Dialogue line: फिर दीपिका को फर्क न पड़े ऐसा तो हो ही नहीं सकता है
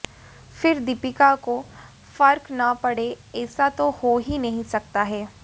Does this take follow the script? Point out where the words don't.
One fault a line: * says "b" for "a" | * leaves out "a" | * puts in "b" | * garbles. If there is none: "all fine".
all fine